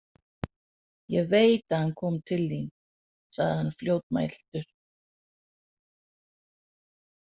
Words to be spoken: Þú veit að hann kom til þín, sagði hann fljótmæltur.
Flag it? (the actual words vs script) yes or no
yes